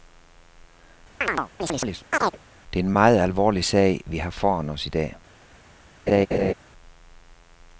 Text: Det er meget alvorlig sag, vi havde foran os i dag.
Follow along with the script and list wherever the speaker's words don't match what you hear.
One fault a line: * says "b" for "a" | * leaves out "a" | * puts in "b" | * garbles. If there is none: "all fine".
* puts in "en"
* says "har" for "havde"